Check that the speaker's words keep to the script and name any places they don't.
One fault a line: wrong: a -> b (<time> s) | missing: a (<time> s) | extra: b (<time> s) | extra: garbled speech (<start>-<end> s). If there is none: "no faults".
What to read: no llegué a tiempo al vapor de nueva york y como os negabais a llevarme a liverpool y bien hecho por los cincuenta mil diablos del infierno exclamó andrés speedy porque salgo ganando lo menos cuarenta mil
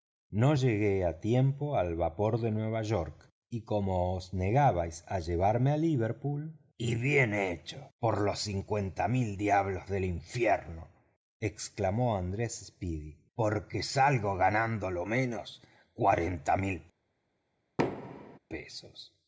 no faults